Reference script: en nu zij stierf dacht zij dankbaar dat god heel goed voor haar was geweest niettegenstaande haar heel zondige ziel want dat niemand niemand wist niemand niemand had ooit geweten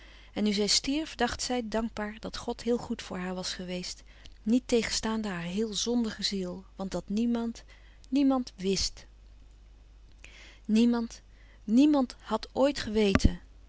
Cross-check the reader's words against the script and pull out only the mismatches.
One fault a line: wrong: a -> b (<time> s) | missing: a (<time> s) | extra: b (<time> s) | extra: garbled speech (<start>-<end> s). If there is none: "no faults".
no faults